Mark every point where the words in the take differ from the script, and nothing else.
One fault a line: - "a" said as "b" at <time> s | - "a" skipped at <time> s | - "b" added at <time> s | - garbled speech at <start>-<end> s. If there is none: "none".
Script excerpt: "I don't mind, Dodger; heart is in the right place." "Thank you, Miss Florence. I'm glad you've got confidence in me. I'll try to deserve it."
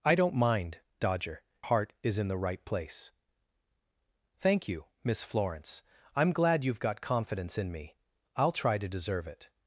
none